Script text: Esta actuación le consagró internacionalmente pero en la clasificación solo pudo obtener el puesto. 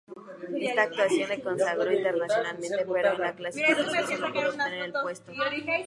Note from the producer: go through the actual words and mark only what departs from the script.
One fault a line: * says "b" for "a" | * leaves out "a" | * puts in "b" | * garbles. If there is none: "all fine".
all fine